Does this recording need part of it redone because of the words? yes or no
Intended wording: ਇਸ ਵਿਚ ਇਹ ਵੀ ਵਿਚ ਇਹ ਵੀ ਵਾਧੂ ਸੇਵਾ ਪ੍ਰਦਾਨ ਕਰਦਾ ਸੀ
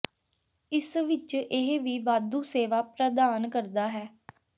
yes